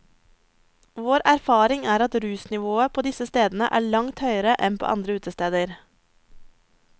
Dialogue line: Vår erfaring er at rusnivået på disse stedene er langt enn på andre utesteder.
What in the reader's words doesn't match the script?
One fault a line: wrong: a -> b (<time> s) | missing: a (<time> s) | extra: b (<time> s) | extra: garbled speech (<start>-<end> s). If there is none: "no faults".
extra: høyere (4.2 s)